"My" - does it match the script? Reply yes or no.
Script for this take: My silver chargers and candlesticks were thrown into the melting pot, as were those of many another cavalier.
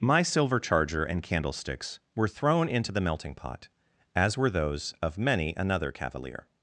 yes